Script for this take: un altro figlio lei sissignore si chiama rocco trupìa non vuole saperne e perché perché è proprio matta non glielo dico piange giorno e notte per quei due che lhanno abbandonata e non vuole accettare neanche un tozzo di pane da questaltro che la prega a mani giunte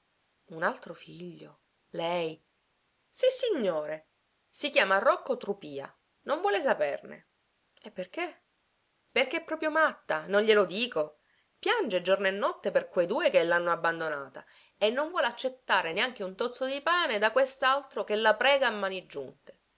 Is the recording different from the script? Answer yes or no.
no